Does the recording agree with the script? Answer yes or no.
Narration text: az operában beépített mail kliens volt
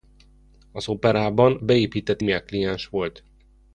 yes